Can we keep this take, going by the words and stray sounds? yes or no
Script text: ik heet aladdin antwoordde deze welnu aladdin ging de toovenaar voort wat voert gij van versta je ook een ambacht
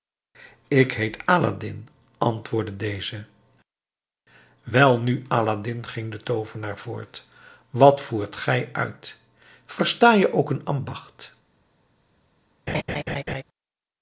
no